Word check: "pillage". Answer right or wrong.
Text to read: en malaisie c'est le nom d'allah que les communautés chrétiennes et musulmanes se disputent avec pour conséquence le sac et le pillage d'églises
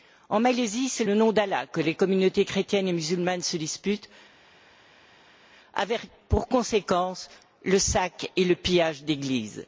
right